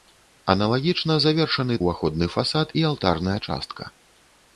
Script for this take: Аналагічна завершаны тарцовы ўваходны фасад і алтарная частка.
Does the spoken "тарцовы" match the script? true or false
false